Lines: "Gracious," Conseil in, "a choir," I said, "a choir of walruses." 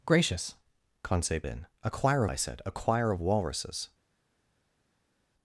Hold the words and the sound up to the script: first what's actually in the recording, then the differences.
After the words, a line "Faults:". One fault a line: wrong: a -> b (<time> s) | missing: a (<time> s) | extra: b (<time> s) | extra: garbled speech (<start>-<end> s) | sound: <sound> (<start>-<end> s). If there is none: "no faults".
"Gracious," Conseil in, "a choir," I said, "a choir of walruses."
Faults:
no faults